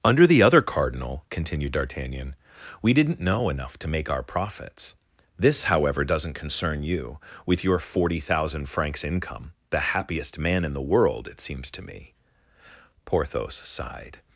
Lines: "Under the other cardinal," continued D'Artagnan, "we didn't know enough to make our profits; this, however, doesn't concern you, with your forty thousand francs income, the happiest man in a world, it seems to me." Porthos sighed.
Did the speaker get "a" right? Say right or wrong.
wrong